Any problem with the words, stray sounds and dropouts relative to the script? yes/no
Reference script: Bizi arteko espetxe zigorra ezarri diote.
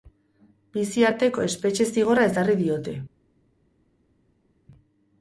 no